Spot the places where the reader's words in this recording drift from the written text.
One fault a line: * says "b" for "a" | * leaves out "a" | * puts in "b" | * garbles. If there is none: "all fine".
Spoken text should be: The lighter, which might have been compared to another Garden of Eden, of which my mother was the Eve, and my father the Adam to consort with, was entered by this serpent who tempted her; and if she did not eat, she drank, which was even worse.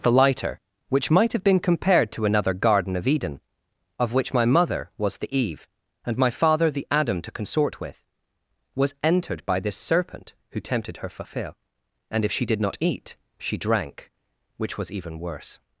* puts in "fulfill"